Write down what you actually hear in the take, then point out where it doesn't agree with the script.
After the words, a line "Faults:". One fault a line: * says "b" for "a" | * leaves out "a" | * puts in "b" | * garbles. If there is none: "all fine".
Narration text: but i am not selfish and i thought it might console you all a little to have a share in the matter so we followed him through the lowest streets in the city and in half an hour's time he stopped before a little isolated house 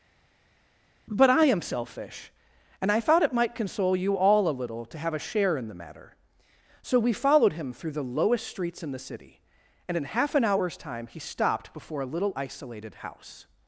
but i am selfish and i thought it might console you all a little to have a share in the matter so we followed him through the lowest streets in the city and in half an hour's time he stopped before a little isolated house
Faults:
* leaves out "not"